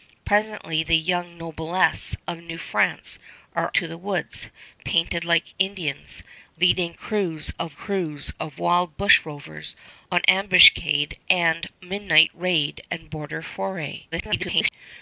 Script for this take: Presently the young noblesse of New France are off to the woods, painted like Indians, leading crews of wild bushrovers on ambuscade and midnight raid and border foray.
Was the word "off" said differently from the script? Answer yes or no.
yes